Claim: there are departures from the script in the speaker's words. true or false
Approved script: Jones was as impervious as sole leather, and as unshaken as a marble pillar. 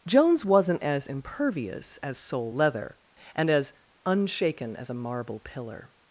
true